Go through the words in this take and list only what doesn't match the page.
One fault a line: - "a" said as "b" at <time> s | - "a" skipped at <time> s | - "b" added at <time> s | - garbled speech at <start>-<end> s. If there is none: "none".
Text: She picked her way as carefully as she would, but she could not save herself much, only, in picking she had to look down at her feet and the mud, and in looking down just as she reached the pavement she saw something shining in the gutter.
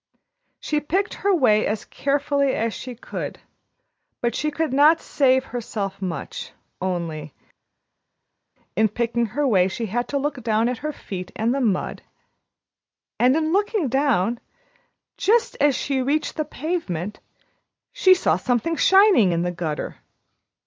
- "would" said as "could" at 3.0 s
- "her way" added at 9.3 s